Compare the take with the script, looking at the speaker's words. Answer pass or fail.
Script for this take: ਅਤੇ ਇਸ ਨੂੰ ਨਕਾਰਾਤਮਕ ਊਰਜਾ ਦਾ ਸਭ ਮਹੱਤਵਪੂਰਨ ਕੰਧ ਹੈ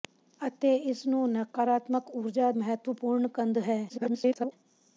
fail